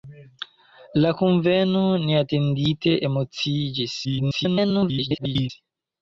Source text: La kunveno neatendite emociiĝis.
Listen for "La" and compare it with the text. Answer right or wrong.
right